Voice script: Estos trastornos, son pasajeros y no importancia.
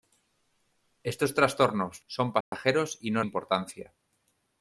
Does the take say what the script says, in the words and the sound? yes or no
no